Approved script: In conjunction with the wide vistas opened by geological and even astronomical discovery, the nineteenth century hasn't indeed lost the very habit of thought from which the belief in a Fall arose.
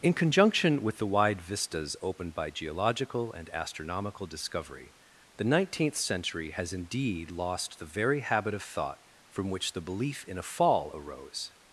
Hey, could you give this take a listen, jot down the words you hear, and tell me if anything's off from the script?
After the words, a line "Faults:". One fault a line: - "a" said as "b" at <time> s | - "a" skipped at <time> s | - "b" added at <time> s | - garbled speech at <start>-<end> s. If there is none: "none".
In conjunction with the wide vistas opened by geological and astronomical discovery, the nineteenth century has indeed lost the very habit of thought from which the belief in a Fall arose.
Faults:
- "even" skipped at 3.5 s
- "hasn't" said as "has" at 6.5 s